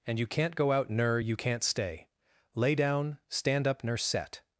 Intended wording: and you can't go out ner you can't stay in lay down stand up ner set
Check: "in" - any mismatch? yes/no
yes